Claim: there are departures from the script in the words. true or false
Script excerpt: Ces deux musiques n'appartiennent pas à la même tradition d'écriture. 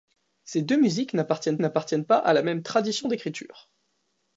true